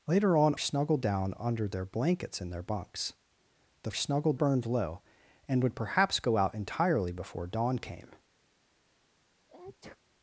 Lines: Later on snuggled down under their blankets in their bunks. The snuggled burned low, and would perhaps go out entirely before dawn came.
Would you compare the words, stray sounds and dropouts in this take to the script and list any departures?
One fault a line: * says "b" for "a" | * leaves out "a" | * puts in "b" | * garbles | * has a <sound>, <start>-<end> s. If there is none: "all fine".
* has a sneeze, 9.5-10.0 s